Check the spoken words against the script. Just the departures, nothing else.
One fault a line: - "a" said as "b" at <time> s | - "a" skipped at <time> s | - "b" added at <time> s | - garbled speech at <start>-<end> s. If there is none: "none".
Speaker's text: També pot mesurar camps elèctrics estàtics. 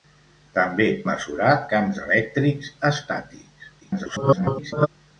- "pot" skipped at 0.9 s
- garbled speech at 3.8-4.9 s